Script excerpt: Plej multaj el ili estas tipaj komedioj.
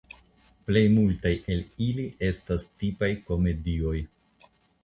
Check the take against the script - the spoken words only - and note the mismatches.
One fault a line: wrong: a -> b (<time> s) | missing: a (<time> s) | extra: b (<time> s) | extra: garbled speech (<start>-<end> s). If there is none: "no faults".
no faults